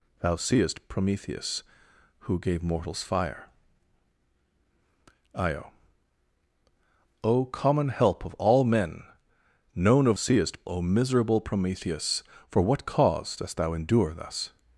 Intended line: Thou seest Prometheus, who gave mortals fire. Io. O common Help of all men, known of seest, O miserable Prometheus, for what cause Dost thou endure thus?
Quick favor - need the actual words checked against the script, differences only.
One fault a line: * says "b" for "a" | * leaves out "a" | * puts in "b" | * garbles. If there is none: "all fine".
all fine